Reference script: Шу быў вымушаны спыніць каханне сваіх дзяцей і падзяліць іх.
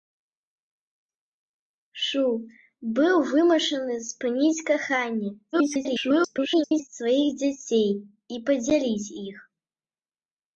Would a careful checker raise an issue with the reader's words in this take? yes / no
yes